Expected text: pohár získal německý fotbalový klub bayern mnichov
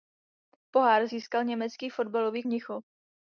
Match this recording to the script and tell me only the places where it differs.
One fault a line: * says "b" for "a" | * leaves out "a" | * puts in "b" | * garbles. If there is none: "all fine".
* leaves out "klub bayern"